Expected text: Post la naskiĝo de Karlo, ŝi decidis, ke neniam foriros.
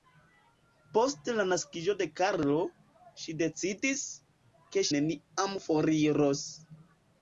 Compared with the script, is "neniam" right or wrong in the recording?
right